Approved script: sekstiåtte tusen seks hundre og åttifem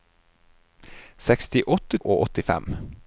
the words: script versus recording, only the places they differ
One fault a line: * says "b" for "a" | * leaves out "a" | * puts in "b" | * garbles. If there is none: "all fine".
* leaves out "tusen seks hundre"